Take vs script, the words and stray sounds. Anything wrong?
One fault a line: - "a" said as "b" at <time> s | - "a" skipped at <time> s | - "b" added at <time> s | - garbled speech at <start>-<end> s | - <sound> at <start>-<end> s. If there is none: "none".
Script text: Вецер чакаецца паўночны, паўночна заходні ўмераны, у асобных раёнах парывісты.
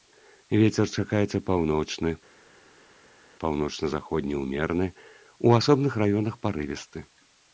none